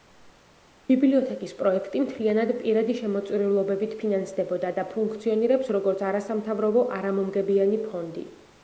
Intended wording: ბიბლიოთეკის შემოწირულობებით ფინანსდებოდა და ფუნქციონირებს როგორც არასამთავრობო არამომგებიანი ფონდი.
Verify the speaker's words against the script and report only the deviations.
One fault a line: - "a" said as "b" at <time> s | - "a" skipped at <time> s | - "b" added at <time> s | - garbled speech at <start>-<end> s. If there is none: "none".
- "პროექტი მთლიანად პირადი" added at 1.6 s